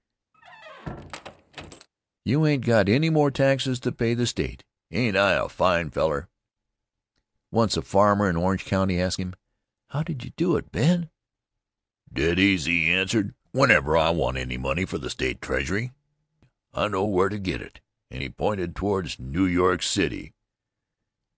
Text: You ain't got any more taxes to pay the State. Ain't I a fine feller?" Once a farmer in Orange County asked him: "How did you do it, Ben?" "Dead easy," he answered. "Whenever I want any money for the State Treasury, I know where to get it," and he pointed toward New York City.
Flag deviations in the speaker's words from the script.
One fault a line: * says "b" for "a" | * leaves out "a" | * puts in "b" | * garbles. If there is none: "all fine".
all fine